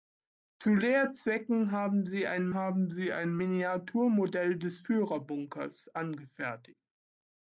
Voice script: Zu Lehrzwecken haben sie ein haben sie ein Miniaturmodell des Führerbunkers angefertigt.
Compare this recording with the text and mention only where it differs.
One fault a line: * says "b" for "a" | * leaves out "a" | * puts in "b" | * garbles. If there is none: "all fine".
all fine